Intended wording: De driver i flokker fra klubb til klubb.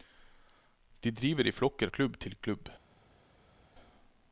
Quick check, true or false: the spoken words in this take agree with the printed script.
false